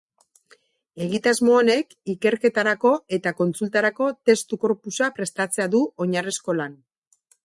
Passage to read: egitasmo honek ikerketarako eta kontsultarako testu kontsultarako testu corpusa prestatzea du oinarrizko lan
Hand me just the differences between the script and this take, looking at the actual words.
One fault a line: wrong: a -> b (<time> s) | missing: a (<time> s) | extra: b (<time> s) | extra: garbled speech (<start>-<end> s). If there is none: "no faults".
missing: kontsultarako testu (4.6 s)